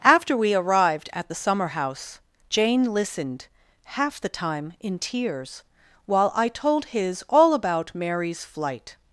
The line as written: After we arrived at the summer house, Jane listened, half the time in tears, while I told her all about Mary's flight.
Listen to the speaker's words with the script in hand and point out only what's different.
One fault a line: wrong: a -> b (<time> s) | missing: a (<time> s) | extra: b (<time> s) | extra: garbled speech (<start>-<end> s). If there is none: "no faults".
wrong: her -> his (6.9 s)